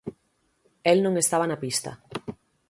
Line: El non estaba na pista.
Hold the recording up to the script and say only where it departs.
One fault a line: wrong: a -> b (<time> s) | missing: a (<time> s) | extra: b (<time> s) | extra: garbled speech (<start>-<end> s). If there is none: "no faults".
no faults